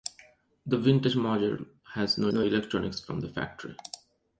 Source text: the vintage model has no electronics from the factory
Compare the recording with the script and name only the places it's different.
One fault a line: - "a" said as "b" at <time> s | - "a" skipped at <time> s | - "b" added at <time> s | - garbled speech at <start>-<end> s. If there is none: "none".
- "no" added at 2.3 s